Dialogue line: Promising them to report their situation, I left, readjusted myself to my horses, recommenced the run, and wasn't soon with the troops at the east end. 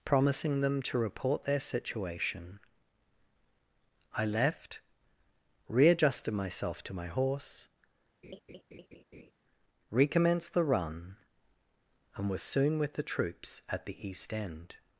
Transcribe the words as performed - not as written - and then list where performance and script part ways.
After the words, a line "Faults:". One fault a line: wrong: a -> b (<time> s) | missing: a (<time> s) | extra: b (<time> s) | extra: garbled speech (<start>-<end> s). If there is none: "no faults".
Promising them to report their situation, I left, readjusted myself to my horse, recommenced the run, and was soon with the troops at the east end.
Faults:
wrong: horses -> horse (7.1 s)
wrong: wasn't -> was (12.3 s)